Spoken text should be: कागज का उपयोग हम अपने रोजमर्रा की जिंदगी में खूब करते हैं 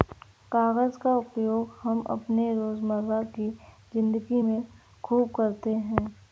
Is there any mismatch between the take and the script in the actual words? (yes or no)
no